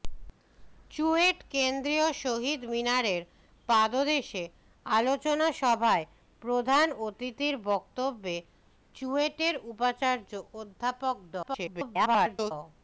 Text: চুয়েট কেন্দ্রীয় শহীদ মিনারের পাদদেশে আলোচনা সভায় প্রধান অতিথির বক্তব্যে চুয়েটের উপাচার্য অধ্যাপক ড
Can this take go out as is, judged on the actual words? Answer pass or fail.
fail